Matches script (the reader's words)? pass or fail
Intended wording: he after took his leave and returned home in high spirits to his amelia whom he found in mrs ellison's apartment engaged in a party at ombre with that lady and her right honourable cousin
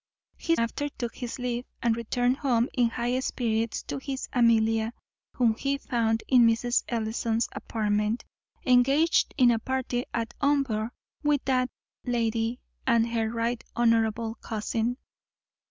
pass